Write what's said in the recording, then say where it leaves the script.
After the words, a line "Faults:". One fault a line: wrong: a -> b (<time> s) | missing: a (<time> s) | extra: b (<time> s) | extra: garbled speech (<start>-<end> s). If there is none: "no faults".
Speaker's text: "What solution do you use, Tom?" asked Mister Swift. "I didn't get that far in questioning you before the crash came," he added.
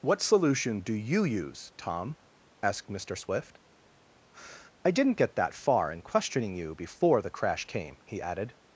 "What solution do you use, Tom?" asked Mister Swift. "I didn't get that far in questioning you before the crash came," he added.
Faults:
no faults